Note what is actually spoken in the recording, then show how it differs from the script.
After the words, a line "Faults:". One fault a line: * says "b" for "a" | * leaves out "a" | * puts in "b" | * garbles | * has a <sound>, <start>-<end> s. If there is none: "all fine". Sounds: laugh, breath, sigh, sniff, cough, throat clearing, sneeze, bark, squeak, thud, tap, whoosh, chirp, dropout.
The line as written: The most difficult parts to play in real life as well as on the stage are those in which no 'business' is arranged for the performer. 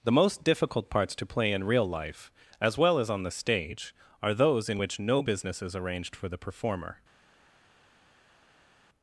The most difficult parts to play in real life as well as on the stage are those in which no 'business' is arranged for the performer.
Faults:
all fine